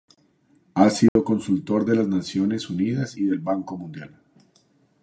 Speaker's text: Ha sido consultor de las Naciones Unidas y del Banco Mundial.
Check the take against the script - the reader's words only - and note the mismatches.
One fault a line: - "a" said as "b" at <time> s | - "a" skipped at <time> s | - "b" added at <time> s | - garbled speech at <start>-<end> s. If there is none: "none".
none